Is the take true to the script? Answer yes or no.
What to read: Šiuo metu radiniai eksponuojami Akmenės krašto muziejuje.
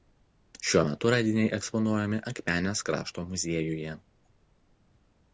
yes